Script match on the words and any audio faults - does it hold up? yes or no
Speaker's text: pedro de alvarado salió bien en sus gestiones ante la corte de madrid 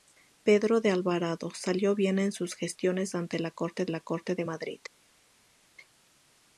no